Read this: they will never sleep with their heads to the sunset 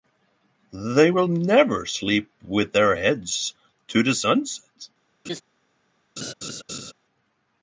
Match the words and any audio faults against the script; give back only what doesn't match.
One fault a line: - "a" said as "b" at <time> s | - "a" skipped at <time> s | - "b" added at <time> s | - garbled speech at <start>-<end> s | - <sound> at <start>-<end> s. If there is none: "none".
- laugh at 5.2-5.4 s
- laugh at 6.2-6.9 s